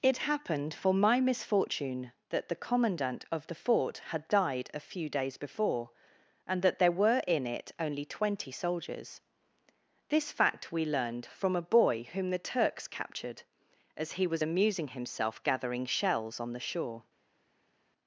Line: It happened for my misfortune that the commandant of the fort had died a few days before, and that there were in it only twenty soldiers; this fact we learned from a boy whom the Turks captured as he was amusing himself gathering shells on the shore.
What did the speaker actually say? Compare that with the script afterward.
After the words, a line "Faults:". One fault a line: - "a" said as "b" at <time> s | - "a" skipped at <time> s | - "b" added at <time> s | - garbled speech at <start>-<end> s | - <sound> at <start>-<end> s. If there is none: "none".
It happened for my misfortune that the commandant of the fort had died a few days before, and that there were in it only twenty soldiers; this fact we learned from a boy whom the Turks captured as he was amusing himself gathering shells on the shore.
Faults:
none